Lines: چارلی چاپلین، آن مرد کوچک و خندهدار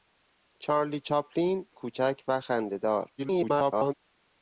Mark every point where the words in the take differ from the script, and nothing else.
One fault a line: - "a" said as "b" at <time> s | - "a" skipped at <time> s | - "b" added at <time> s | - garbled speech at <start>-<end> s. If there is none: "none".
- "آن مرد" skipped at 1.7 s
- garbled speech at 3.2-3.9 s